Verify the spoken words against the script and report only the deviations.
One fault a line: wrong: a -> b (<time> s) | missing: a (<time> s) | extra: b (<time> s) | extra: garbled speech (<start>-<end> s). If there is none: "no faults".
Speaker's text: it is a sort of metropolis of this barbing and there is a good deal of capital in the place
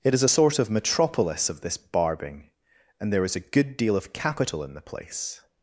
no faults